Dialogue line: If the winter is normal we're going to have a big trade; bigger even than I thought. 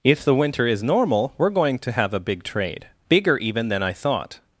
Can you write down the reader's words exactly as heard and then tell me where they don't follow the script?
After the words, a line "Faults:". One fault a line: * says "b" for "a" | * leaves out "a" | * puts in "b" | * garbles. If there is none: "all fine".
If the winter is normal we're going to have a big trade; bigger even than I thought.
Faults:
all fine